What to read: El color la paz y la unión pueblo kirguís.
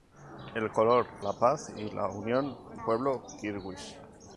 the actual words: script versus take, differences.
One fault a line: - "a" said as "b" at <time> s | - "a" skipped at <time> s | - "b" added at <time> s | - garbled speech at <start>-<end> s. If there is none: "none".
none